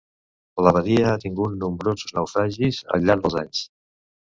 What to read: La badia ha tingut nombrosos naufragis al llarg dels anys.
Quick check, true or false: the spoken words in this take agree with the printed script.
true